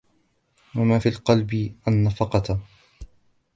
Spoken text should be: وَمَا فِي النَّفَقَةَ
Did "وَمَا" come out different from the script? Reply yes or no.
no